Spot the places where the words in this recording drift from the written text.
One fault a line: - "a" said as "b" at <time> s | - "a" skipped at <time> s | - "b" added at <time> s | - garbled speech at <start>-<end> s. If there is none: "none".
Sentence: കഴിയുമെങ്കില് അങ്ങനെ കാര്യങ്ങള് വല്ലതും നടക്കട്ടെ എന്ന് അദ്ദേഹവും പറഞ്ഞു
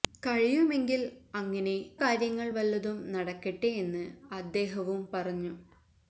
none